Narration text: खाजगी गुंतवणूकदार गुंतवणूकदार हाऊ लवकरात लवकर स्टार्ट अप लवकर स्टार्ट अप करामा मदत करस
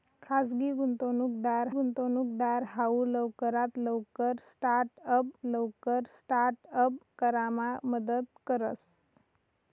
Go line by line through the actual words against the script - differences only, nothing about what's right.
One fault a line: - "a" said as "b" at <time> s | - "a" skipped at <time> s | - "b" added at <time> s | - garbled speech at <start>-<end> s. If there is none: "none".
none